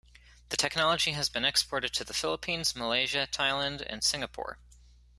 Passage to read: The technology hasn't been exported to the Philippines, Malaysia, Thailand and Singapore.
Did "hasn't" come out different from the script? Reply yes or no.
yes